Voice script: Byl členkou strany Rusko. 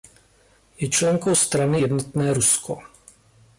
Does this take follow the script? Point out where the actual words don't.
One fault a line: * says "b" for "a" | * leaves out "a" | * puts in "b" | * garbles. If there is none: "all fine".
* says "Je" for "Byl"
* puts in "Jednotné"